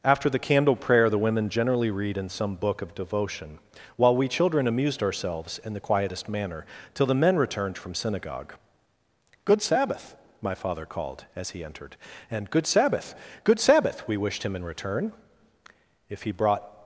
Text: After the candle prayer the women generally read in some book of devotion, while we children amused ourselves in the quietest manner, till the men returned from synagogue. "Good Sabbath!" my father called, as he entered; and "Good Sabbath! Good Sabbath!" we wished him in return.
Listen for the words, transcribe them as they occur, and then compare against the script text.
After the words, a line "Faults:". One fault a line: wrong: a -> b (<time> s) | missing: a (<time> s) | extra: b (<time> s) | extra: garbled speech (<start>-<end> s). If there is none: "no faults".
After the candle prayer the women generally read in some book of devotion, while we children amused ourselves in the quietest manner, till the men returned from synagogue. "Good Sabbath!" my father called, as he entered; and "Good Sabbath! Good Sabbath!" we wished him in return. If he brought
Faults:
extra: If he brought (16.1 s)